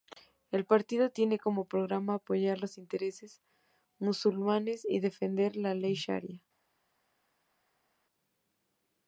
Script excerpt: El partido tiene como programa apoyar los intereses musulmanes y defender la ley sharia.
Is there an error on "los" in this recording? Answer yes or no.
no